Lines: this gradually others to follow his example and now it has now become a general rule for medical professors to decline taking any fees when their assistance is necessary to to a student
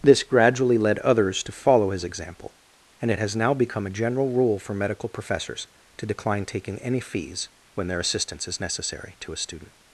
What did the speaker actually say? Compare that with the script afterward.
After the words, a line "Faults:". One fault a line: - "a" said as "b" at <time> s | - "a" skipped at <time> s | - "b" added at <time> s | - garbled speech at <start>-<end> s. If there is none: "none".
this gradually led others to follow his example and it has now become a general rule for medical professors to decline taking any fees when their assistance is necessary to a student
Faults:
- "led" added at 0.8 s
- "now" skipped at 3.1 s
- "to" skipped at 9.3 s